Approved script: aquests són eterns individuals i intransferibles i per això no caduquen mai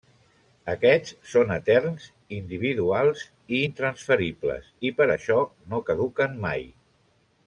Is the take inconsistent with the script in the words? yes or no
no